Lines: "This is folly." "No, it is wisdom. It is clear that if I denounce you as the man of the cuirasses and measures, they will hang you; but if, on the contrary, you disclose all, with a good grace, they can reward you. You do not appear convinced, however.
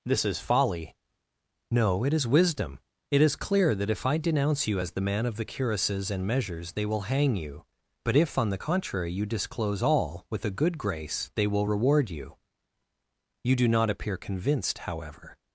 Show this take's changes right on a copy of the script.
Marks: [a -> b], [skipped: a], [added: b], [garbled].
"This is folly." "No, it is wisdom. It is clear that if I denounce you as the man of the cuirasses and measures, they will hang you; but if, on the contrary, you disclose all, with a good grace, they [can -> will] reward you. You do not appear convinced, however.